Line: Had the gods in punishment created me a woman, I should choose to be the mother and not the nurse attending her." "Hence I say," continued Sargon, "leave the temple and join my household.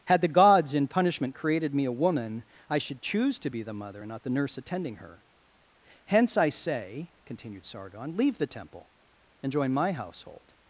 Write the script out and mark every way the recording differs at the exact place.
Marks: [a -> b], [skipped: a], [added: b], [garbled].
Had the gods in punishment created me a woman, I should choose to be the mother and not the nurse attending her." "Hence I say," continued Sargon, "leave the temple and join my household.